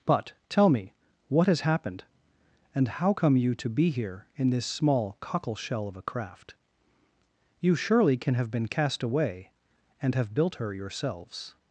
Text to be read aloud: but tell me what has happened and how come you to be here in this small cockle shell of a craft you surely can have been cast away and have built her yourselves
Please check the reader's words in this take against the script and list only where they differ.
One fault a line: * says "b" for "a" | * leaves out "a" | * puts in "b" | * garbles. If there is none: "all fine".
all fine